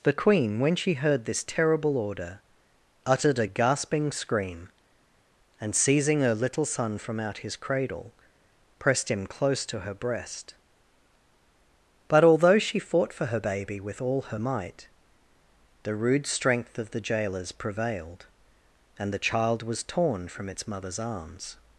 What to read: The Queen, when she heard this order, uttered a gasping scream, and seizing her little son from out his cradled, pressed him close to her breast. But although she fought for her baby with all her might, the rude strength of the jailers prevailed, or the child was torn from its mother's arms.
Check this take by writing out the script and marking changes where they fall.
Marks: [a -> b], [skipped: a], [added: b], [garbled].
The Queen, when she heard this [added: terrible] order, uttered a gasping scream, and seizing her little son from out his [cradled, -> cradle] pressed him close to her breast. But although she fought for her baby with all her might, the rude strength of the jailers prevailed, [or -> and] the child was torn from its mother's arms.